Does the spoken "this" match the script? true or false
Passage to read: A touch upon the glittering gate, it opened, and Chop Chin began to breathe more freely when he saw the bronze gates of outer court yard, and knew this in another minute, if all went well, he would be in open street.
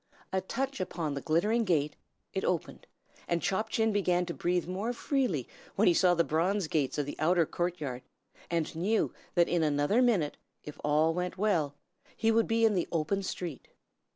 false